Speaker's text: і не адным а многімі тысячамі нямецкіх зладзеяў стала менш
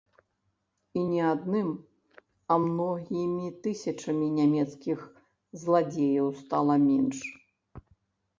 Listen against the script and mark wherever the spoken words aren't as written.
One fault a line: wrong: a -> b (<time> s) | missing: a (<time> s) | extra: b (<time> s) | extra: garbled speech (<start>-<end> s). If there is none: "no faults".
no faults